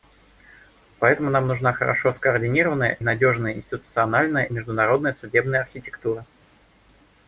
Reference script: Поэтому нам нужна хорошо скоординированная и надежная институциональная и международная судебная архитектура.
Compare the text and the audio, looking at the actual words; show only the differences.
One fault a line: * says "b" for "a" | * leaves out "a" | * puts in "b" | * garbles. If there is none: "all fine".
all fine